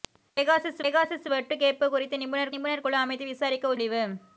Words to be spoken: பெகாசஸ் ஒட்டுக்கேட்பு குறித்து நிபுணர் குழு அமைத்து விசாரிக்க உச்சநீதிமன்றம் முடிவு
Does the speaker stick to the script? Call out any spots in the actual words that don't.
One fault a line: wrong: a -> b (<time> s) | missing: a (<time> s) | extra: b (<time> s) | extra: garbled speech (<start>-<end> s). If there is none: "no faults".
extra: பெகாசஸ் (0.8 s)
extra: நிபுணர் (2.5 s)
missing: உச்சநீதிமன்றம் (3.7 s)